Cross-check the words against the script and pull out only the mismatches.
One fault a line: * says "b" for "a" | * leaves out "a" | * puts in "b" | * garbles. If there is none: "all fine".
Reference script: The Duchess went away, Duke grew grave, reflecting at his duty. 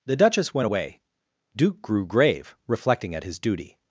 all fine